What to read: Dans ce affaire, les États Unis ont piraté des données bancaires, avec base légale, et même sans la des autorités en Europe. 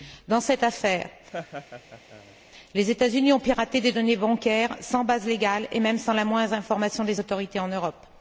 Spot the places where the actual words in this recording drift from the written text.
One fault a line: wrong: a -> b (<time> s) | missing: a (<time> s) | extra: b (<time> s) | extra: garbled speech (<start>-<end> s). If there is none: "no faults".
wrong: ce -> cette (0.4 s)
wrong: avec -> sans (4.8 s)
extra: moindre information (6.2 s)